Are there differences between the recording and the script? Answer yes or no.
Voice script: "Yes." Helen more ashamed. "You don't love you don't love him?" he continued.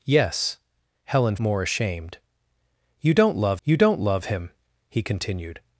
no